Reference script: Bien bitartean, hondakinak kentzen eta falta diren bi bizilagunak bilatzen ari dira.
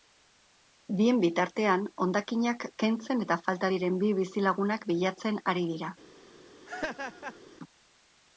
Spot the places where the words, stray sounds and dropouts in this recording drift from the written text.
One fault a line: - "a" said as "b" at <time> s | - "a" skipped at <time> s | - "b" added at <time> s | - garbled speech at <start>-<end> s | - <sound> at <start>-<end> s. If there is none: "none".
- laugh at 6.7-7.4 s